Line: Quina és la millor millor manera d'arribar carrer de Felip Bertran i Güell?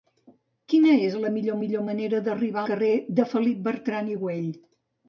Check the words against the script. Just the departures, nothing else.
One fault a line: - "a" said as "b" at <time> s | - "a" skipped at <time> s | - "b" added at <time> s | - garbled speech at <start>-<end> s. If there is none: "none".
none